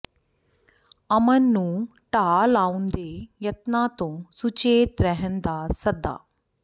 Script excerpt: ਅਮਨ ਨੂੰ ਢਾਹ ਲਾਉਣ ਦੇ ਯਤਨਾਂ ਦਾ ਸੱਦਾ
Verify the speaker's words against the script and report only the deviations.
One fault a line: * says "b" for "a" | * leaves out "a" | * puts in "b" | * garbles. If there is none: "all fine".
* puts in "ਤੋਂ ਸੁਚੇਤ ਰਹਿਣ"